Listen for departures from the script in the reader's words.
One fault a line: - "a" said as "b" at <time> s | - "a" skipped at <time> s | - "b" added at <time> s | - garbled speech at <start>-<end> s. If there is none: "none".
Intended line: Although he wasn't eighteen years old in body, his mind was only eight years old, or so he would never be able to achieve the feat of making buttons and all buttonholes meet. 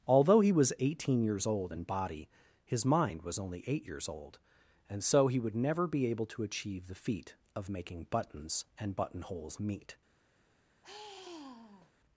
- "wasn't" said as "was" at 0.5 s
- "or" said as "and" at 4.9 s
- "all" skipped at 9.0 s